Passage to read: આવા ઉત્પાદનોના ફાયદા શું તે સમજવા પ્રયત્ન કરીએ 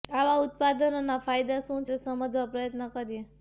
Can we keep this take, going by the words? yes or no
yes